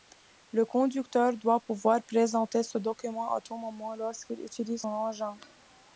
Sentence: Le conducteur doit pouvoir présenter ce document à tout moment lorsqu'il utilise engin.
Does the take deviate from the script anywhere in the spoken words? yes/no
no